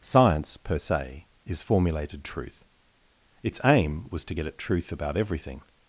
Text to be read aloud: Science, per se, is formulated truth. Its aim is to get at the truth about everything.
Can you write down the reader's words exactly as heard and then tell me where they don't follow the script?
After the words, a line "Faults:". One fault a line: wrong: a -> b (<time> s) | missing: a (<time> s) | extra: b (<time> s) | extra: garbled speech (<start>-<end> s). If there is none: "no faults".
Science, per se, is formulated truth. Its aim was to get at truth about everything.
Faults:
wrong: is -> was (4.1 s)
missing: the (4.6 s)